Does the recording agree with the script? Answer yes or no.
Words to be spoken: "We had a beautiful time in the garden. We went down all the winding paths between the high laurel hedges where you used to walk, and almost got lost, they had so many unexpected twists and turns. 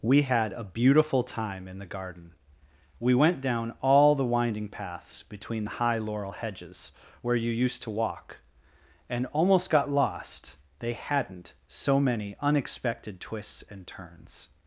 no